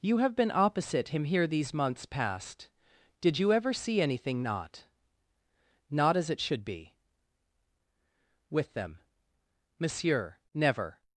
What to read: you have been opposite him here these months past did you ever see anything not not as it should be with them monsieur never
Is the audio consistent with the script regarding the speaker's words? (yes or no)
yes